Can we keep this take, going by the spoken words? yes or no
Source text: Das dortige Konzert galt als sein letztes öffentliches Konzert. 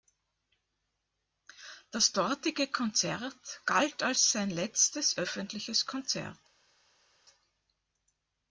yes